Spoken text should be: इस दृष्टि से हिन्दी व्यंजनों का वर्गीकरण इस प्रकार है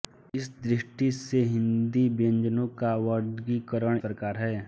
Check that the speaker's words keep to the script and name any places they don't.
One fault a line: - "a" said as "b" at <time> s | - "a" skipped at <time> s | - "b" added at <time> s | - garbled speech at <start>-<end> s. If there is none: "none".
- "इस" skipped at 4.0 s